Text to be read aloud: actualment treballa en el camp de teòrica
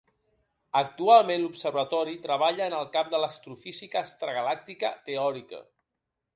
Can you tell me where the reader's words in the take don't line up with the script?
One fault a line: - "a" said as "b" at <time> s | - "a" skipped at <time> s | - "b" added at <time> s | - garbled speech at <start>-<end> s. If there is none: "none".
- "l'observatori" added at 1.4 s
- "l'astrofísica extragalàctica" added at 3.3 s